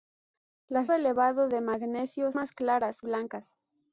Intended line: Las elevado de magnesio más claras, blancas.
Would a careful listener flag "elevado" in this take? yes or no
no